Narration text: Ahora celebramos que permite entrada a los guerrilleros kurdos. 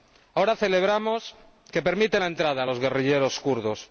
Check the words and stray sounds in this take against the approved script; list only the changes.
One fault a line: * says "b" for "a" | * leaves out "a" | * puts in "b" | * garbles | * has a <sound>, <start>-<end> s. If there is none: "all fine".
* puts in "la"